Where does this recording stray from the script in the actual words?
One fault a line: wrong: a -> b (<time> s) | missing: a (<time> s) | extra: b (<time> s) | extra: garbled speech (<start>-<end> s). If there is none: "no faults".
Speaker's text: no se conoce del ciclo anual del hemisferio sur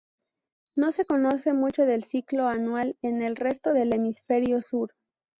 extra: mucho (1.5 s)
extra: en el resto (3.0 s)